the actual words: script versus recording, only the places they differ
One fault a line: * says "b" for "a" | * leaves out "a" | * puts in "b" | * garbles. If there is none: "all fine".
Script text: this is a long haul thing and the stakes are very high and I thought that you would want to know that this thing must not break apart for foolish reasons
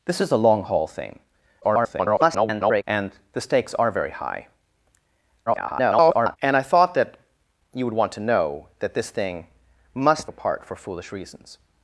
* garbles
* garbles
* leaves out "not break"